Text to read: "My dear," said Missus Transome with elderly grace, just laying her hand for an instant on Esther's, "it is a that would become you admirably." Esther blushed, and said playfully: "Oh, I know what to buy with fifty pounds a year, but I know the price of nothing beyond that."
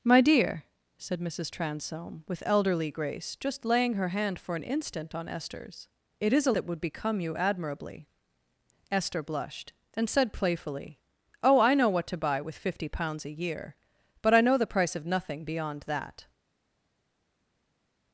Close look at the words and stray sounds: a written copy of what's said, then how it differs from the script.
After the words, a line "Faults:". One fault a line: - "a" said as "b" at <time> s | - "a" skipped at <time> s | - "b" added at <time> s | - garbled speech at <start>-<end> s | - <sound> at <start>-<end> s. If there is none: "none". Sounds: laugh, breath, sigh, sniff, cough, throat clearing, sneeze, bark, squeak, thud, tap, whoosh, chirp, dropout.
"My dear," said Missus Transome with elderly grace, just laying her hand for an instant on Esther's, "it is a that would become you admirably." Esther blushed, and said playfully: "Oh, I know what to buy with fifty pounds a year, but I know the price of nothing beyond that."
Faults:
none